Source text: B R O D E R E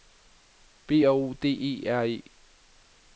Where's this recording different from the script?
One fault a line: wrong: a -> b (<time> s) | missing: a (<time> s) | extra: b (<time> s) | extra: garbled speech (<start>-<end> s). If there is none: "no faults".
no faults